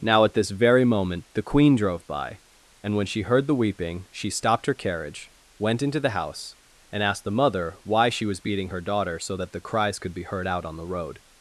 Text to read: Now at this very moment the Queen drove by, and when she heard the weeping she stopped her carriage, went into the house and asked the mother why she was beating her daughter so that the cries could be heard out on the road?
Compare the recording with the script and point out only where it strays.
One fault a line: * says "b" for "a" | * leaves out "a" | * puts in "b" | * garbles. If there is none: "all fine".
all fine